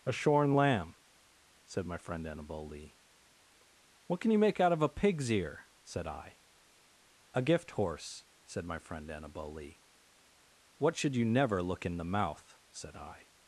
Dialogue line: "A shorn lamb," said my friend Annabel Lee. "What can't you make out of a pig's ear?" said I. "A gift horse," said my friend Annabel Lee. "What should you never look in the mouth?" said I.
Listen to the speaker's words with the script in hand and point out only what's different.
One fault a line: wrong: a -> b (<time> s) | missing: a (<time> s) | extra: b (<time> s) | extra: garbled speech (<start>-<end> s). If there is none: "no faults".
wrong: can't -> can (4.2 s)